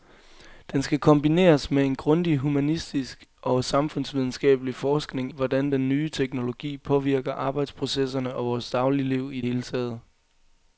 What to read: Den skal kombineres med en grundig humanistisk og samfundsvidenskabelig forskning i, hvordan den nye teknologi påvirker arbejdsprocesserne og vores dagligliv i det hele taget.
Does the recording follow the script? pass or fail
fail